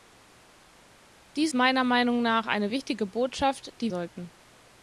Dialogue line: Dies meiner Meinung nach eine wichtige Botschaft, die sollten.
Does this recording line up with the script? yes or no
yes